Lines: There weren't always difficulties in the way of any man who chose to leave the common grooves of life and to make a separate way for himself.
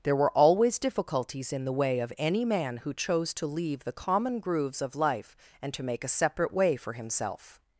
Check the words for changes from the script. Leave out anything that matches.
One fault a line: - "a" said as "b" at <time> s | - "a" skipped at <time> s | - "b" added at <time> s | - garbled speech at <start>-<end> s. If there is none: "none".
- "weren't" said as "were" at 0.1 s